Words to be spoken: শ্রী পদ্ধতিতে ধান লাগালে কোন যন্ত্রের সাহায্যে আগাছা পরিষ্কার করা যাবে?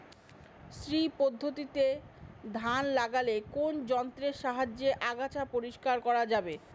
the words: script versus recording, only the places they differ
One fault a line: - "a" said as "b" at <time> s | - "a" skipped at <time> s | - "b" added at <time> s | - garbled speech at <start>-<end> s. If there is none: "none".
none